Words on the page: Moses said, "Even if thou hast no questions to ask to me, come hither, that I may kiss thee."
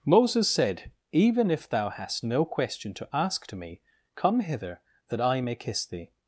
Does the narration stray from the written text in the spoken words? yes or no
yes